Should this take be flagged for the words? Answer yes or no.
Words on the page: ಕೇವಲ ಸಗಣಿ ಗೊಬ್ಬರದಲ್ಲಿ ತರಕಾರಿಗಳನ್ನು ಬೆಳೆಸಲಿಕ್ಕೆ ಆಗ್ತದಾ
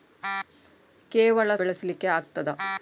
yes